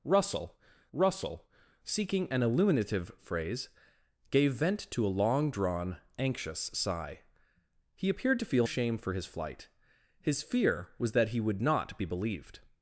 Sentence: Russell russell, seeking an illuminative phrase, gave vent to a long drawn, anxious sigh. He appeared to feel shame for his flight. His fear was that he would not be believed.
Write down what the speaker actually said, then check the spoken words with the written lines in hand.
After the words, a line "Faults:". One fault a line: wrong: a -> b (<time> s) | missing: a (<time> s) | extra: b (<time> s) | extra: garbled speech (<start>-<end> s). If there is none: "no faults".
Russell russell, seeking an illuminative phrase, gave vent to a long drawn, anxious sigh. He appeared to feel shame for his flight. His fear was that he would not be believed.
Faults:
no faults